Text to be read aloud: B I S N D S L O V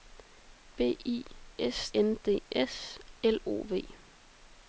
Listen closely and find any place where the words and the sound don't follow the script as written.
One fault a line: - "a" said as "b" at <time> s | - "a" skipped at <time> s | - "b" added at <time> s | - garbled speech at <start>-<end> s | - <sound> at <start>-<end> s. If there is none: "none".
none